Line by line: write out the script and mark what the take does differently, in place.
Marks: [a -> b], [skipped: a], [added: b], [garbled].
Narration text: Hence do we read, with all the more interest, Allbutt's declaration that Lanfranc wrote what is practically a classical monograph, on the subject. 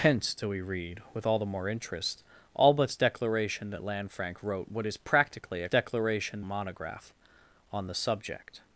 Hence do we read, with all the more interest, Allbutt's declaration that Lanfranc wrote what is practically a [classical -> declaration] monograph, on the subject.